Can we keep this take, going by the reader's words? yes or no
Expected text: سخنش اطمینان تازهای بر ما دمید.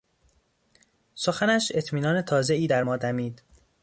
no